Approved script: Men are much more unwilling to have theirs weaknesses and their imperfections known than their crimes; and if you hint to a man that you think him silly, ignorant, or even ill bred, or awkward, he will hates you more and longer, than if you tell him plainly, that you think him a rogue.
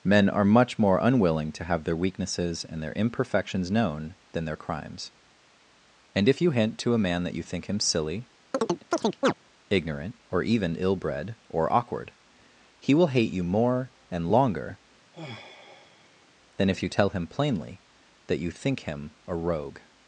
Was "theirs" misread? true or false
true